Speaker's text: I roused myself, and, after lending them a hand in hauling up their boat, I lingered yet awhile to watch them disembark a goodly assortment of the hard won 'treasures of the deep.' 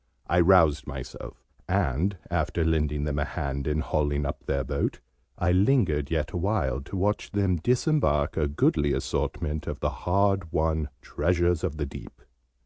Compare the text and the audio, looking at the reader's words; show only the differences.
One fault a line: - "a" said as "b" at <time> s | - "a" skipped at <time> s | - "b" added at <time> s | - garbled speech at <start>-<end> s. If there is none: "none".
none